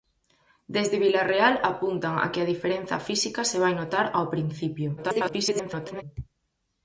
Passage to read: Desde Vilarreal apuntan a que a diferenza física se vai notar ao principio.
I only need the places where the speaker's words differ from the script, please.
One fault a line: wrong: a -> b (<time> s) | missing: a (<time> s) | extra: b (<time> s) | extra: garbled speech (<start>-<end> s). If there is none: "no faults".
extra: garbled speech (5.0-6.0 s)